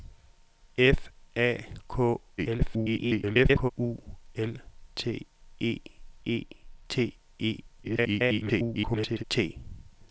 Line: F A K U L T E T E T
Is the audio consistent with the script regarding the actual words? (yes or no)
no